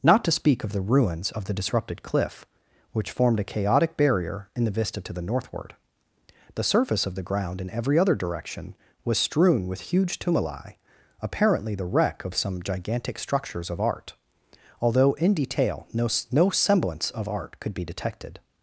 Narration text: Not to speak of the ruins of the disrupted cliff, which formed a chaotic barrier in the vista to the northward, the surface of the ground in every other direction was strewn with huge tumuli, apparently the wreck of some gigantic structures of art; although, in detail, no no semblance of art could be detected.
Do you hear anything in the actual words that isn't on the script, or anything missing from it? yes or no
no